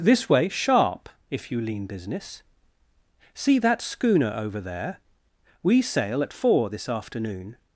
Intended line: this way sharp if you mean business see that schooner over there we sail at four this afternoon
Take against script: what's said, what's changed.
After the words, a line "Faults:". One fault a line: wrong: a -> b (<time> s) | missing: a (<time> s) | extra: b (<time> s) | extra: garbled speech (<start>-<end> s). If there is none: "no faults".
this way sharp if you lean business see that schooner over there we sail at four this afternoon
Faults:
wrong: mean -> lean (1.6 s)